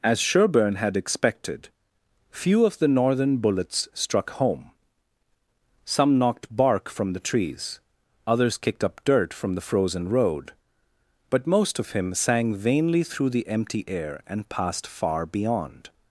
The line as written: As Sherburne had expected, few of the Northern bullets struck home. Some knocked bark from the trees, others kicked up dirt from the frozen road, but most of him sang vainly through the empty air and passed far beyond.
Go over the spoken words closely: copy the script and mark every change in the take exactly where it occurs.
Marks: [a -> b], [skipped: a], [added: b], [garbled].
As Sherburne had expected, few of the Northern bullets struck home. Some knocked bark from the trees, others kicked up dirt from the frozen road, but most of him sang vainly through the empty air and passed far beyond.